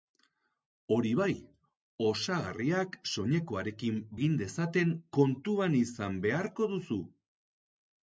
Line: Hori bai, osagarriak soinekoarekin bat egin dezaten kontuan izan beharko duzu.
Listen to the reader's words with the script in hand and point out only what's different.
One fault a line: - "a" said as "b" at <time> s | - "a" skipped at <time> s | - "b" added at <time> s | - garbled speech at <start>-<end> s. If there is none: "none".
- "bat" skipped at 4.0 s